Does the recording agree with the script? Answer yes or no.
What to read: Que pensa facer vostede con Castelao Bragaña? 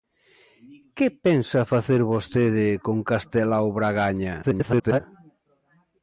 no